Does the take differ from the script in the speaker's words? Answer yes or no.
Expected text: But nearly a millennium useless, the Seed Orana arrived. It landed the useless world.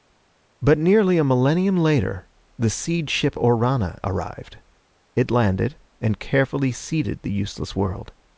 yes